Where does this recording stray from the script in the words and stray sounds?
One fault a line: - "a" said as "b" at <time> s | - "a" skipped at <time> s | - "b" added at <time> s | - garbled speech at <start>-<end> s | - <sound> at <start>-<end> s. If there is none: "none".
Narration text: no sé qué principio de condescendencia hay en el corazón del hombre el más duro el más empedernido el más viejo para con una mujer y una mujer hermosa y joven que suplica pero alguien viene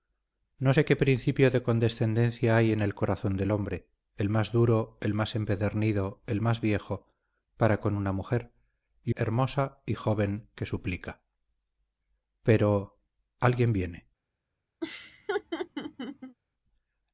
- "una mujer" skipped at 9.1 s
- laugh at 14.8-16.4 s